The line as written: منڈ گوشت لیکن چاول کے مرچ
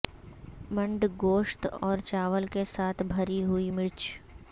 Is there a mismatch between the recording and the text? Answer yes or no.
yes